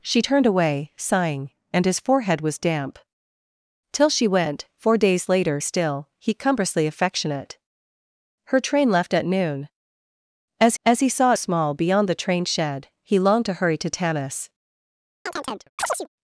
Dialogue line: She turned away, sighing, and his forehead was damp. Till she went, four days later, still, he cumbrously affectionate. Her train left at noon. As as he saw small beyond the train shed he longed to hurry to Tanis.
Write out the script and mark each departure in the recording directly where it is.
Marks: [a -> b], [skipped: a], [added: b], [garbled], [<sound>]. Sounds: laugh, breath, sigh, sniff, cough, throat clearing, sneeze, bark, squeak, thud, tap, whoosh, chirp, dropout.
She turned away, sighing, and his forehead was damp. Till she went, four days later, still, he cumbrously affectionate. Her train left at noon. As as he saw small beyond the train shed he longed to hurry to Tanis. [chirp]